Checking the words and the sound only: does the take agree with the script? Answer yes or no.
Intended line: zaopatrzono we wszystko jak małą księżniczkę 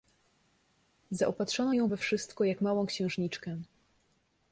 no